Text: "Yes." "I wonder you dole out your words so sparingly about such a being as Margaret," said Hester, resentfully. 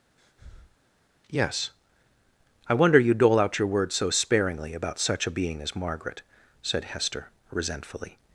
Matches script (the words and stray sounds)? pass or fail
fail